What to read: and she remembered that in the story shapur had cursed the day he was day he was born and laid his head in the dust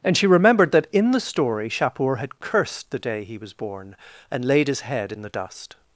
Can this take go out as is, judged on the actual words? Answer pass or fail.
fail